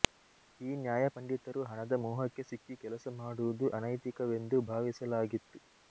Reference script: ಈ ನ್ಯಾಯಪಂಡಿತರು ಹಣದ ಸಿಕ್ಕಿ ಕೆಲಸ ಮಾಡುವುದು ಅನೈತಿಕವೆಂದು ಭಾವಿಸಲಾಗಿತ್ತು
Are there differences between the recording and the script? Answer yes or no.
yes